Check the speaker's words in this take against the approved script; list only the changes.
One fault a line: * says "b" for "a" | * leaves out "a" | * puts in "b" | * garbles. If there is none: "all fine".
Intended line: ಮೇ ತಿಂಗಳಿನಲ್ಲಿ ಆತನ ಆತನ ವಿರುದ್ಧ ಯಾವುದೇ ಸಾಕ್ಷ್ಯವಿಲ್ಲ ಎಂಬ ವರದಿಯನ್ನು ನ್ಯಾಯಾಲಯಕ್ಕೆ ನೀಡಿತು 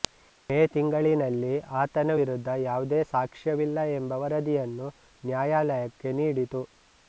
* leaves out "ಆತನ"